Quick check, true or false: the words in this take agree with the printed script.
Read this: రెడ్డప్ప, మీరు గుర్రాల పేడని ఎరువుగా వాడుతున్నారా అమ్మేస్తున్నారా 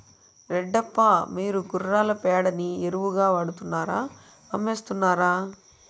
true